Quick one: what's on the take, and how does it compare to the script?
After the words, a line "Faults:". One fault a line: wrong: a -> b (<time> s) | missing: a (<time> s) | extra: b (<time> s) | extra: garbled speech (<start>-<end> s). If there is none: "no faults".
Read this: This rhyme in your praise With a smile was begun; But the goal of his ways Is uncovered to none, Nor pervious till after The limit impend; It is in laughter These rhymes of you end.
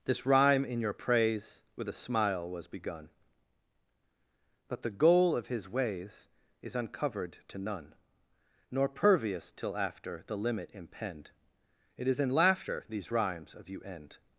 This rhyme in your praise With a smile was begun; But the goal of his ways Is uncovered to none, Nor pervious till after The limit impend; It is in laughter These rhymes of you end.
Faults:
no faults